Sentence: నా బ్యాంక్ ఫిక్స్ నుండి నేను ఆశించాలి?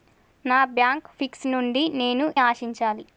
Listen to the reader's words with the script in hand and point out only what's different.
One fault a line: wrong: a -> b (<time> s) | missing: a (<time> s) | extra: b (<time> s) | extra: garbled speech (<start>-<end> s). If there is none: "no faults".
no faults